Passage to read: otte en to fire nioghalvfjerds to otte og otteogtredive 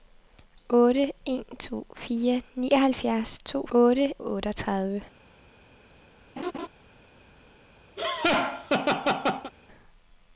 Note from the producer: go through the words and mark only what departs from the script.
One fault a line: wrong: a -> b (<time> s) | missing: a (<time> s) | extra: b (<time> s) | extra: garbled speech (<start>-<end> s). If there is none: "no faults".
no faults